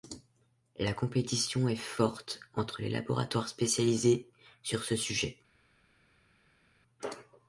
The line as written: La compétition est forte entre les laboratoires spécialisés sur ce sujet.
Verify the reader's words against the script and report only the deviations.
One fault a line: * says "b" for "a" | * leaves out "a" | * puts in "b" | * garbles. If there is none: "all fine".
all fine